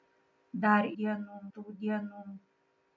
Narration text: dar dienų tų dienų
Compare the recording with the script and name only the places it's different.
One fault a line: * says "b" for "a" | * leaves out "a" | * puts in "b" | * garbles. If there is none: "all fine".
all fine